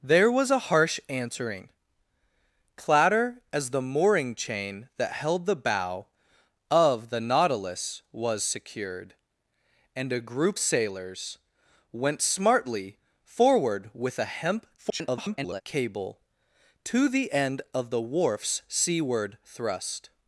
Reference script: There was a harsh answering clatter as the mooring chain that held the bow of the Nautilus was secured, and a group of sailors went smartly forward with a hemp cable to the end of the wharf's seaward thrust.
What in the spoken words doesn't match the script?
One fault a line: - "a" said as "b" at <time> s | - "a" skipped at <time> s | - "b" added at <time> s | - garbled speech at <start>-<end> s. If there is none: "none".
- "of" skipped at 10.6 s
- garbled speech at 14.8-15.6 s